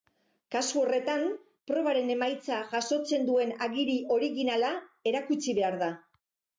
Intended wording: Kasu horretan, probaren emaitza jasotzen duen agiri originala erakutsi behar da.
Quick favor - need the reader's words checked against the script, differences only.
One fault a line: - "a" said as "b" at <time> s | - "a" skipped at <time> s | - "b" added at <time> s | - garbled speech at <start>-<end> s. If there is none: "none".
none